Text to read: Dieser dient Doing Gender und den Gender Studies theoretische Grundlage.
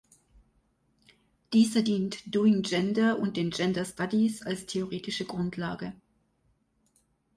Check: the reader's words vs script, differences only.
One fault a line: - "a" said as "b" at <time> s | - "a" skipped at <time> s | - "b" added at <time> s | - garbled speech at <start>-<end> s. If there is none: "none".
- "als" added at 4.4 s